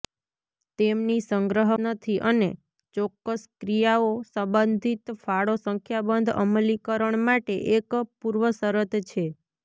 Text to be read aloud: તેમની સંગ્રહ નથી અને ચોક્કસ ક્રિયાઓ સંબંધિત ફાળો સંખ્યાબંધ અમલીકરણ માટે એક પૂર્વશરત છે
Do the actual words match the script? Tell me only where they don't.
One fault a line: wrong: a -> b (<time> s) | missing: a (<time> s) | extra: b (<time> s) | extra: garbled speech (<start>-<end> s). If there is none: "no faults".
no faults